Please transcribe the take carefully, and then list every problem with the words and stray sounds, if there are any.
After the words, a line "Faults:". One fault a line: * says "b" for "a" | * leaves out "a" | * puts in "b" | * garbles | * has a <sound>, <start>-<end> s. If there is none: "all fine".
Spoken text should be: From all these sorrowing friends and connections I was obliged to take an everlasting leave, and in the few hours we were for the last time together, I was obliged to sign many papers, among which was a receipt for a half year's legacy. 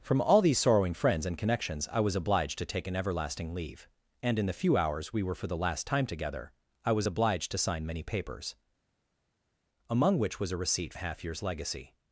From all these sorrowing friends and connections I was obliged to take an everlasting leave, and in the few hours we were for the last time together, I was obliged to sign many papers, among which was a receipt a half year's legacy.
Faults:
* leaves out "for"